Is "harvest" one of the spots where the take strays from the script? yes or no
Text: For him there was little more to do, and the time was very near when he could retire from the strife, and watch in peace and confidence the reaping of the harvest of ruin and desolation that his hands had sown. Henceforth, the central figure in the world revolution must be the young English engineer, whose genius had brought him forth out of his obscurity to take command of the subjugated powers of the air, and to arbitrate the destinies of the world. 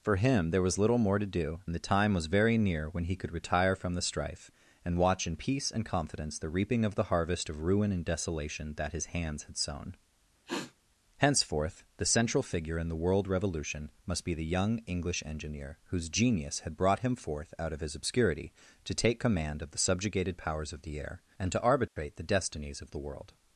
no